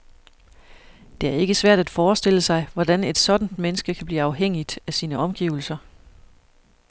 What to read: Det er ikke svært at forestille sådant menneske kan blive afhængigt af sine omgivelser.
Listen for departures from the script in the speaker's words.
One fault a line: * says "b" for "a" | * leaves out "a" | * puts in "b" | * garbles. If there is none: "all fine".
* puts in "sig hvordan et"